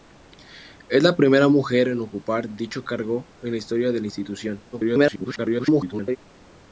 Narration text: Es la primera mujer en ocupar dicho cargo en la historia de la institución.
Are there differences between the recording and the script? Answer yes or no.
yes